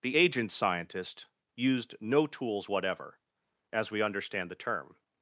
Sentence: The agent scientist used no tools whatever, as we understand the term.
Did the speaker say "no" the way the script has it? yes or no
yes